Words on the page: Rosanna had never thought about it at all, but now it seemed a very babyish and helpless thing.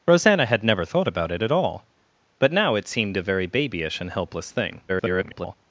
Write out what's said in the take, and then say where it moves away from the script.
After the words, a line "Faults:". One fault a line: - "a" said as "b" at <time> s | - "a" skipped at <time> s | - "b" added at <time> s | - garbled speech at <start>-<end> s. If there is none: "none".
Rosanna had never thought about it at all, but now it seemed a very babyish and helpless thing. [garbled]
Faults:
- garbled speech at 4.9-5.6 s